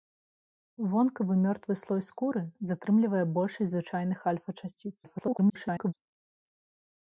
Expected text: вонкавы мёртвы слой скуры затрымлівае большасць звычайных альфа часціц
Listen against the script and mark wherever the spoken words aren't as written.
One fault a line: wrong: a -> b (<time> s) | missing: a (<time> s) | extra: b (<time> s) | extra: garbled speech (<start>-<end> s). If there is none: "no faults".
extra: garbled speech (5.0-5.9 s)